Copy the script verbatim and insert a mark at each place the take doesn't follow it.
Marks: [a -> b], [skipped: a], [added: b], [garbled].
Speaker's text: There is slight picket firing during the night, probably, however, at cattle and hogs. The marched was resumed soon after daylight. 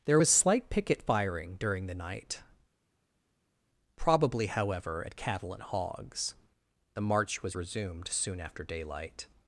There [is -> was] slight picket firing during the night, probably, however, at cattle and hogs. The [marched -> march] was resumed soon after daylight.